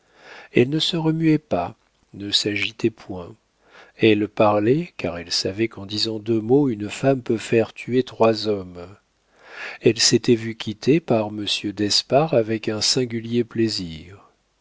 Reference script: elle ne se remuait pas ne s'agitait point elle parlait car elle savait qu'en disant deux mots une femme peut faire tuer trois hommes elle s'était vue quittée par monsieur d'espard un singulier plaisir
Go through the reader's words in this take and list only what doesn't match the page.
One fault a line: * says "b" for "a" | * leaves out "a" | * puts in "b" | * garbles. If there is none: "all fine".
* puts in "avec"